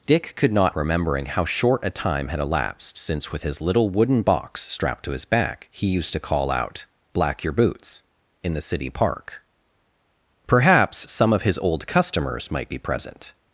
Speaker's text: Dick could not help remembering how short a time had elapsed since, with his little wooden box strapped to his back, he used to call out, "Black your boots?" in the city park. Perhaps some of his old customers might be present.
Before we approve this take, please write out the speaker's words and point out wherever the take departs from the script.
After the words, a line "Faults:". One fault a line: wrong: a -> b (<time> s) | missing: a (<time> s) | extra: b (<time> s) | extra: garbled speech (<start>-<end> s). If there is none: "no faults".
Dick could not remembering how short a time had elapsed since, with his little wooden box strapped to his back, he used to call out, "Black your boots?" in the city park. Perhaps some of his old customers might be present.
Faults:
missing: help (0.8 s)